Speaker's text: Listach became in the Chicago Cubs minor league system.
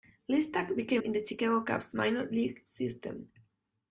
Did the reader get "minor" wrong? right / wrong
right